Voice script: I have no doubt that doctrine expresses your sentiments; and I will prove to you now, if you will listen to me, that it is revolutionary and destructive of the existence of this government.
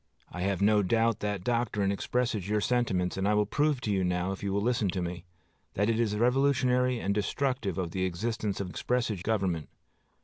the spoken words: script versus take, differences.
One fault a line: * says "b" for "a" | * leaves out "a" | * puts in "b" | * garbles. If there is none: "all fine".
* says "expresses" for "this"